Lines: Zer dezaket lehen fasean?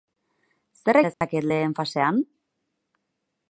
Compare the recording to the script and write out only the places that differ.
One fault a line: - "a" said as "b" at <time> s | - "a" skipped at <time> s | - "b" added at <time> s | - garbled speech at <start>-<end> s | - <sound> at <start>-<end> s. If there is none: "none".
- dropout at 1.1-1.2 s